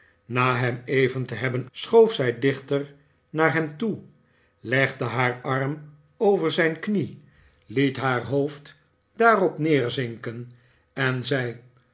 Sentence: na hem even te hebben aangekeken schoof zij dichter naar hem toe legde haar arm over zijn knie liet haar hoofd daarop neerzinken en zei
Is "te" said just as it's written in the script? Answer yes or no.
yes